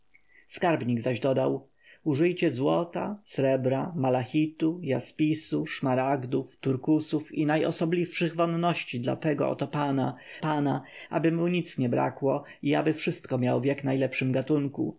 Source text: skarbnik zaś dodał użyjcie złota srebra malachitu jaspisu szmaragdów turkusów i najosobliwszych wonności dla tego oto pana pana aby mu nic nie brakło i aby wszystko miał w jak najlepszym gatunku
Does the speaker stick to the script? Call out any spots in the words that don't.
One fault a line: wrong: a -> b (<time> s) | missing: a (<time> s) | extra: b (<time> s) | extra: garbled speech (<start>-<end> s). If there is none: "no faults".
no faults